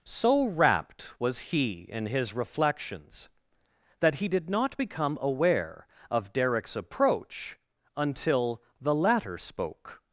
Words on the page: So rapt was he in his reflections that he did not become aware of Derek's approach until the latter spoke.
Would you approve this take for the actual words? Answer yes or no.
yes